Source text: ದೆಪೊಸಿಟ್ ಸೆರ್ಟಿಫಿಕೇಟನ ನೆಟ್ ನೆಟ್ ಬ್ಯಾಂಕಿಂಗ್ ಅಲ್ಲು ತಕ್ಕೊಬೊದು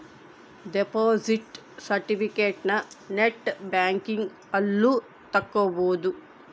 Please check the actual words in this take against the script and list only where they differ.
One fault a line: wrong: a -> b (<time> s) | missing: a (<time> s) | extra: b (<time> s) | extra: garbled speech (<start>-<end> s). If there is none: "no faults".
missing: ನೆಟ್ (3.5 s)